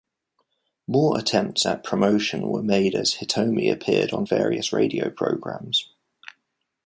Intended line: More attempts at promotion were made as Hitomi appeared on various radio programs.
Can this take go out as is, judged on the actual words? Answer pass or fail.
pass